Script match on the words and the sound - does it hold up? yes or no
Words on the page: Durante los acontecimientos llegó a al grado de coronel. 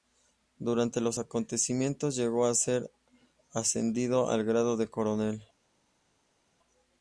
no